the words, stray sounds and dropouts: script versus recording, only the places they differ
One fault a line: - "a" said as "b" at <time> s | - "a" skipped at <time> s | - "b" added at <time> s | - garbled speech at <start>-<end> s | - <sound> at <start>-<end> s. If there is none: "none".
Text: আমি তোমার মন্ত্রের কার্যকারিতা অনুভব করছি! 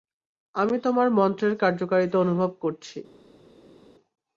none